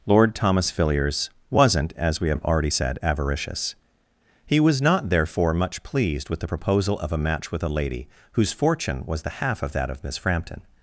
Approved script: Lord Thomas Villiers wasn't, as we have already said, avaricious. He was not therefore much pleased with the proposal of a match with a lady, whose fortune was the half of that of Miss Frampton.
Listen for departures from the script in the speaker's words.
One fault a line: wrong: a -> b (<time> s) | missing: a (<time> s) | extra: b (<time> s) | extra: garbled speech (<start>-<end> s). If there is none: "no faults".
no faults